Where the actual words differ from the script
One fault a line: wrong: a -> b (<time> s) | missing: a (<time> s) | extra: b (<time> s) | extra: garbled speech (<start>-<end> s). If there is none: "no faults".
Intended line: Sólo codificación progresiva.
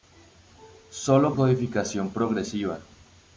no faults